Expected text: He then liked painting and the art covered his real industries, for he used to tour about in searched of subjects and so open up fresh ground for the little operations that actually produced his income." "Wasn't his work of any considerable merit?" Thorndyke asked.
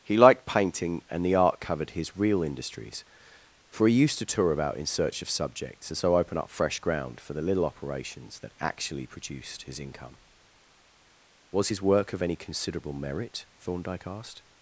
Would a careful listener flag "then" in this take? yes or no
yes